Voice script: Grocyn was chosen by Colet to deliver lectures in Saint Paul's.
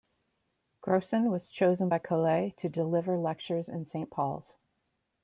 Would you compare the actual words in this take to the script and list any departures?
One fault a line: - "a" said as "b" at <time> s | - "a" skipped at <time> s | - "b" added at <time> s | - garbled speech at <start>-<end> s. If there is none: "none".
none